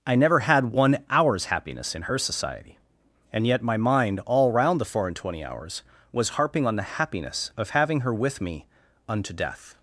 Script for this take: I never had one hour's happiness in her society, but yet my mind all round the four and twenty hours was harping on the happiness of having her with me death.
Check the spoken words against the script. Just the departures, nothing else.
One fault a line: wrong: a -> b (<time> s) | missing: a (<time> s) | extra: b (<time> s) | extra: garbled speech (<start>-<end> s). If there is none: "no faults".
wrong: but -> and (3.3 s)
extra: unto (9.1 s)